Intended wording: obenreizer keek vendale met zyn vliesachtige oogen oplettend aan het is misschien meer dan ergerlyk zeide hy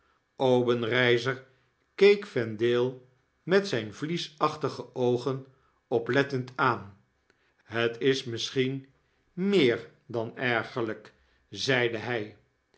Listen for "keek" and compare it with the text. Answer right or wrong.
right